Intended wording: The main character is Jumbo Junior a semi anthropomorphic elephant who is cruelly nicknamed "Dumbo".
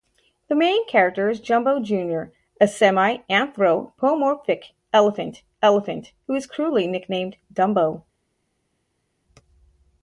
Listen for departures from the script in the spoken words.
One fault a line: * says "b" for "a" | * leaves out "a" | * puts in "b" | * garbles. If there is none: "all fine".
* puts in "elephant"